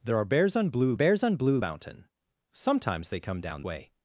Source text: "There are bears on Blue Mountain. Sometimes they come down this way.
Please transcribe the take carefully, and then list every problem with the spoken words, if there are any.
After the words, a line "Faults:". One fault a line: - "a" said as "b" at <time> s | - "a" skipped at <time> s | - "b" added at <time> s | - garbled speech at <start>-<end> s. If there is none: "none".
"There are bears on Blue bears on Blue Mountain. Sometimes they come down way.
Faults:
- "bears on Blue" added at 0.9 s
- "this" skipped at 3.6 s